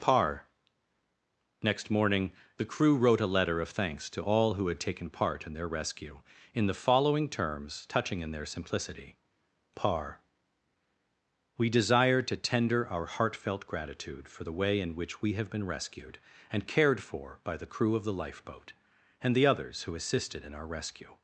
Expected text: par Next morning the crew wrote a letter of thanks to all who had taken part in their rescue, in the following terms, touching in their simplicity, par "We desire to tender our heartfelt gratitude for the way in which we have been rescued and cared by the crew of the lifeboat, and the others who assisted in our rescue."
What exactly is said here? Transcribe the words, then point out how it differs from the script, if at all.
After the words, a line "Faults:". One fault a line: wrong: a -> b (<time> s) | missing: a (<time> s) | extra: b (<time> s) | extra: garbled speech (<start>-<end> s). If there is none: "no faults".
par Next morning the crew wrote a letter of thanks to all who had taken part in their rescue, in the following terms, touching in their simplicity, par "We desire to tender our heartfelt gratitude for the way in which we have been rescued and cared for by the crew of the lifeboat, and the others who assisted in our rescue."
Faults:
extra: for (17.0 s)